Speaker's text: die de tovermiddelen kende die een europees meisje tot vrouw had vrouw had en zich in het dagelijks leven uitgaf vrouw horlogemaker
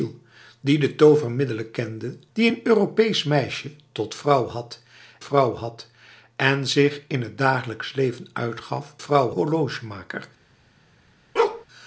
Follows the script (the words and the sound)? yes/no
no